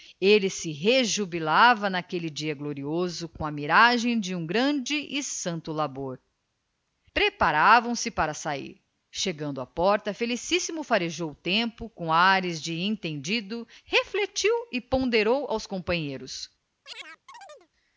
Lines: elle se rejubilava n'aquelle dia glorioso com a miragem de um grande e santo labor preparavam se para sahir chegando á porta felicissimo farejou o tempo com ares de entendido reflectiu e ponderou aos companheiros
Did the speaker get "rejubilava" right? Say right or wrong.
right